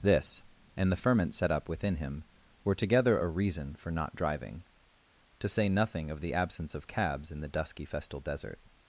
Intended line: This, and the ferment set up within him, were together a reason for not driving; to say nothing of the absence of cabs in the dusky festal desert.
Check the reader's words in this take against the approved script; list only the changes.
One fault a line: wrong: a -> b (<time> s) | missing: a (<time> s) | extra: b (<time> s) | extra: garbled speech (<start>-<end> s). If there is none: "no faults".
no faults